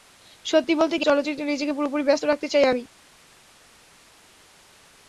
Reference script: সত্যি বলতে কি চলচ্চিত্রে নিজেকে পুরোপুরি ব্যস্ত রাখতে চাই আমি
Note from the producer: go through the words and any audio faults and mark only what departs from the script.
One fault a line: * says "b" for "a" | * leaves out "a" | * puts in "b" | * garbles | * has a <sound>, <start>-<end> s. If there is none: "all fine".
all fine